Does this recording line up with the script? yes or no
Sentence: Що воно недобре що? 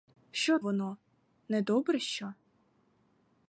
yes